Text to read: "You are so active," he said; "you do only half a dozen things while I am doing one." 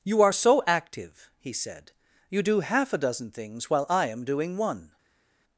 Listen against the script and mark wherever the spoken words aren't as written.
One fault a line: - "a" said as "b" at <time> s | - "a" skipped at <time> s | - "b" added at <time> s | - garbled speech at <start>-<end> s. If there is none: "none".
- "only" skipped at 2.6 s